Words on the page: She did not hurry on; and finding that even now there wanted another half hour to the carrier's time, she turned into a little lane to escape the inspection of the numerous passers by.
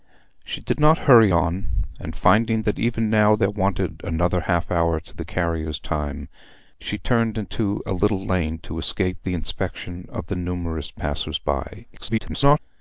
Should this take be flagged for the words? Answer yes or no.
yes